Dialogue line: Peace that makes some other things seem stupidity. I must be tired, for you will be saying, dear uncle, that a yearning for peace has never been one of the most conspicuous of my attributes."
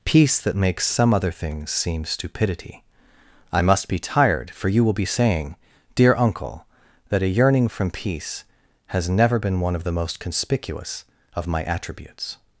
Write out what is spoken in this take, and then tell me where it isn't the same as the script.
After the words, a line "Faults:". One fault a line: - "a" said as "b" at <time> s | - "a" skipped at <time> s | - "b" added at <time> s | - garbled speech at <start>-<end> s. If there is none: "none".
Peace that makes some other things seem stupidity. I must be tired, for you will be saying, dear uncle, that a yearning from peace has never been one of the most conspicuous of my attributes."
Faults:
- "for" said as "from" at 7.7 s